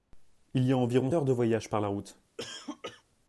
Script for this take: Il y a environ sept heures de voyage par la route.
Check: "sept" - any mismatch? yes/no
yes